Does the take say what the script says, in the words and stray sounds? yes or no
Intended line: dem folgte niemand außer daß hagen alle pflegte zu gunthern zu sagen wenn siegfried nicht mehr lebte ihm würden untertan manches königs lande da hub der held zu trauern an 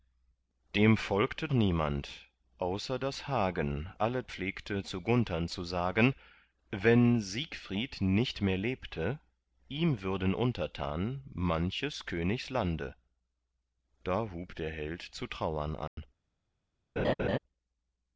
no